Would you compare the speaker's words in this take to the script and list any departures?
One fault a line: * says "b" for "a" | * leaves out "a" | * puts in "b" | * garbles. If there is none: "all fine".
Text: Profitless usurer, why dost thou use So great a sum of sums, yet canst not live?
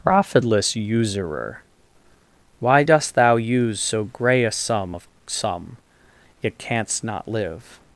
* says "grey" for "great"
* says "sum" for "sums"